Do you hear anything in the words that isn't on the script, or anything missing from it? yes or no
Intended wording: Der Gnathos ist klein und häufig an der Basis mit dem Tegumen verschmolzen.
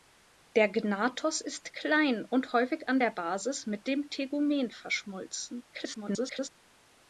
yes